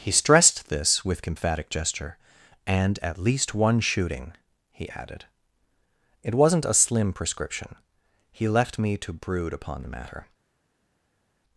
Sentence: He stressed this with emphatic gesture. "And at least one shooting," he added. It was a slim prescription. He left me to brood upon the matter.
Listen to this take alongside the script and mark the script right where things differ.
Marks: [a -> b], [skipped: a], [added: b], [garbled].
He stressed this with emphatic gesture. "And at least one shooting," he added. It [was -> wasn't] a slim prescription. He left me to brood upon the matter.